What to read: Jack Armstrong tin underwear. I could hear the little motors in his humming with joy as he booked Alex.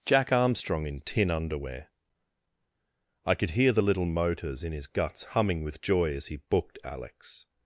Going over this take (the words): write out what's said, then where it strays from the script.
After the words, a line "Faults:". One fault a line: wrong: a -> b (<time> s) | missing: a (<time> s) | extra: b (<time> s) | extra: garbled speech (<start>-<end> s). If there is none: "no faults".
Jack Armstrong in tin underwear. I could hear the little motors in his guts humming with joy as he booked Alex.
Faults:
extra: in (0.9 s)
extra: guts (4.9 s)